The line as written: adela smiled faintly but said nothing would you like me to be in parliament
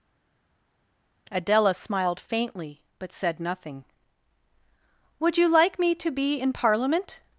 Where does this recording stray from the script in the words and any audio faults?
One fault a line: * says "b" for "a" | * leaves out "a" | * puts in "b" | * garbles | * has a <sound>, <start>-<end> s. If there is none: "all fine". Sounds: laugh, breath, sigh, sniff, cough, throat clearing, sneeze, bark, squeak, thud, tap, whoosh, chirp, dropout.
all fine